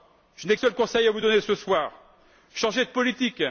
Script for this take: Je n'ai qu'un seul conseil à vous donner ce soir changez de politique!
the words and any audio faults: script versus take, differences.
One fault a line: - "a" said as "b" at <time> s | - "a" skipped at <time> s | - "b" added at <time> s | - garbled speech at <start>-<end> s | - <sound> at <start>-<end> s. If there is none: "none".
- "qu'un" skipped at 0.6 s